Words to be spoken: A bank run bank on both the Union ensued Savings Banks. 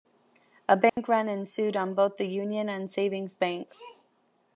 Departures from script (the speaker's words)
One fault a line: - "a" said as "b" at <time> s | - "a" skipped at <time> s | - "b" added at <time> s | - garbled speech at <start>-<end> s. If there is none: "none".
- "bank" said as "ensued" at 1.3 s
- "ensued" said as "and" at 2.7 s